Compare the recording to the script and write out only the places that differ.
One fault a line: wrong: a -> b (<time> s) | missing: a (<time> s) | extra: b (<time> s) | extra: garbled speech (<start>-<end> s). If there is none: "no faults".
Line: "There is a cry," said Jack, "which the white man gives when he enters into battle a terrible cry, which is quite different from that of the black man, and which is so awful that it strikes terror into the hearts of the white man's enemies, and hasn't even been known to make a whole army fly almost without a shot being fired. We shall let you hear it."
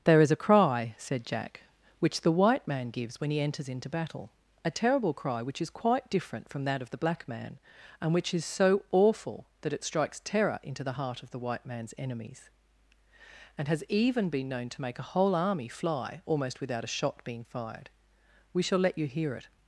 wrong: hearts -> heart (10.9 s)
wrong: hasn't -> has (13.7 s)